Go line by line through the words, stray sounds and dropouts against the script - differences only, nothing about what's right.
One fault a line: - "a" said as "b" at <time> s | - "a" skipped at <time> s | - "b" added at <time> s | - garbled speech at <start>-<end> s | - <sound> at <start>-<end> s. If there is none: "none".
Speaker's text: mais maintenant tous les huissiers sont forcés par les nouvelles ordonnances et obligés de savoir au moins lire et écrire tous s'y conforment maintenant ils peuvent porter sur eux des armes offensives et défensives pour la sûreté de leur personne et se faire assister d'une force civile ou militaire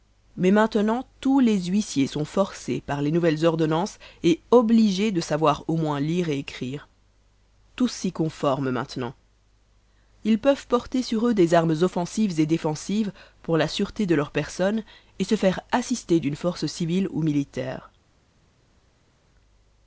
none